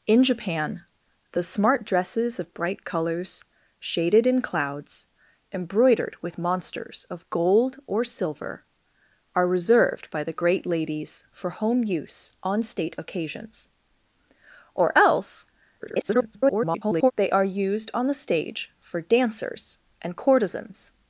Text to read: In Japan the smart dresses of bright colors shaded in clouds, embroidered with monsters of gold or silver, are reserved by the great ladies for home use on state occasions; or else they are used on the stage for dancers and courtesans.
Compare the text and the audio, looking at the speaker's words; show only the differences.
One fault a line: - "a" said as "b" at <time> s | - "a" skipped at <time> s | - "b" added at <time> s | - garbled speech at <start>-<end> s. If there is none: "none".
- garbled speech at 15.8-17.1 s